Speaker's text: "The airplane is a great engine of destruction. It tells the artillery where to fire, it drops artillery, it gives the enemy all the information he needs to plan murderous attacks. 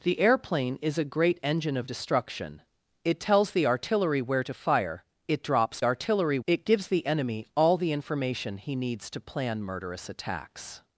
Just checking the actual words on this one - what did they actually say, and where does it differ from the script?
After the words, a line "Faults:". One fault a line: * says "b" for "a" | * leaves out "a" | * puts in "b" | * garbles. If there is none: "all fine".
"The airplane is a great engine of destruction. It tells the artillery where to fire, it drops artillery, it gives the enemy all the information he needs to plan murderous attacks.
Faults:
all fine